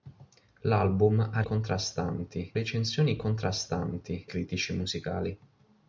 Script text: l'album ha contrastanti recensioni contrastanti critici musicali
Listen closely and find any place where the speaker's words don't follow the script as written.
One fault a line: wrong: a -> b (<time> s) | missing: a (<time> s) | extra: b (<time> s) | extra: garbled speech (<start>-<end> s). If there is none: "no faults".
no faults